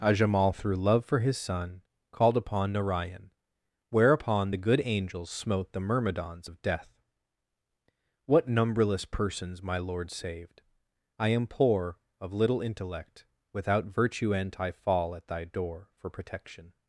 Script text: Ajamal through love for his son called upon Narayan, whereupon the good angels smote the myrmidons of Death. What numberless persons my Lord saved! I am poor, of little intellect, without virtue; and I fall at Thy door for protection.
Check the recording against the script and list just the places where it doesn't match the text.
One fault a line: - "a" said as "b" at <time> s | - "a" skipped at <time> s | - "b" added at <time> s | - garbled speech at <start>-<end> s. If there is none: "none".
none